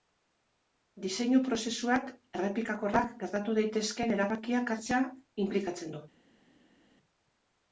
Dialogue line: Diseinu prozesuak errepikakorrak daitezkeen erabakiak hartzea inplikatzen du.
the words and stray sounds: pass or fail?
fail